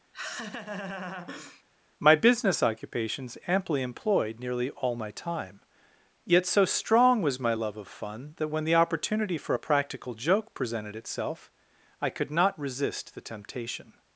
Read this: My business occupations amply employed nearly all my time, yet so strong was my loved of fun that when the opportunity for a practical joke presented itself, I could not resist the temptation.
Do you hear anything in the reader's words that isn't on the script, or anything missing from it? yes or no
yes